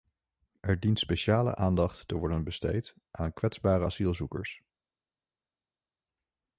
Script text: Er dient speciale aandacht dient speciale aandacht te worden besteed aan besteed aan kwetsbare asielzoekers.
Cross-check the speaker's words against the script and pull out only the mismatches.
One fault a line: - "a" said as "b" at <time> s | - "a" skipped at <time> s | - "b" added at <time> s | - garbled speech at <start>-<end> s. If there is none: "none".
- "dient speciale aandacht" skipped at 2.1 s
- "besteed aan" skipped at 3.3 s